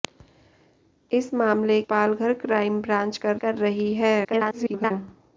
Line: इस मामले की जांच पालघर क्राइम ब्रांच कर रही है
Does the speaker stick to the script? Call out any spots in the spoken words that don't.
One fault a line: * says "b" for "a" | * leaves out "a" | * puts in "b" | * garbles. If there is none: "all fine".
* leaves out "की जांच"
* puts in "कर"
* garbles